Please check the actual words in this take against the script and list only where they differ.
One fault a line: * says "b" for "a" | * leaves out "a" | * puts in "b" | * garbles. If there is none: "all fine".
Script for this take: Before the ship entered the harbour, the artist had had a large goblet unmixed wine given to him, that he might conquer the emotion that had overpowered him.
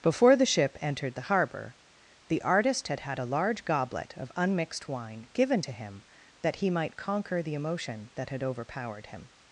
* puts in "of"